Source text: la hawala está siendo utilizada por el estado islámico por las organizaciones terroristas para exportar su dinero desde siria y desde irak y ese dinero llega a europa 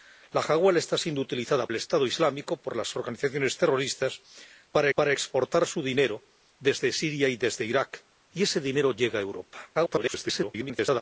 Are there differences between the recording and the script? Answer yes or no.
yes